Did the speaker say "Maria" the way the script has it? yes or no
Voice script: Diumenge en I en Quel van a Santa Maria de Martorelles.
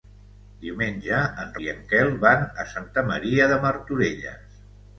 yes